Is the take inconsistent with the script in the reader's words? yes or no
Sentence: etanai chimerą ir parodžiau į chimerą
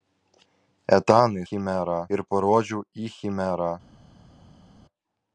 no